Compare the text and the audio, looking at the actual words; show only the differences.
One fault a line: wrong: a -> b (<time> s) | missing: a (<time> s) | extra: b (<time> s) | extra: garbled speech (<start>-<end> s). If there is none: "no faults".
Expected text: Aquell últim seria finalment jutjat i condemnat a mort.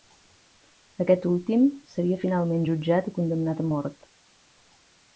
wrong: Aquell -> Aquest (1.1 s)